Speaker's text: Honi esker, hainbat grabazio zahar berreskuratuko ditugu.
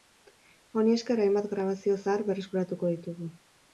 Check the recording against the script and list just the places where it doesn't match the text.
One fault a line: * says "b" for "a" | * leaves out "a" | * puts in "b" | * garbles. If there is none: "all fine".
all fine